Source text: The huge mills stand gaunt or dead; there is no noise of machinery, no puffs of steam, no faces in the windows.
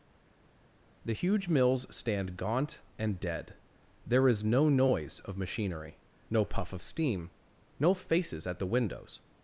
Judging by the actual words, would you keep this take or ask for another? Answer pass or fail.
fail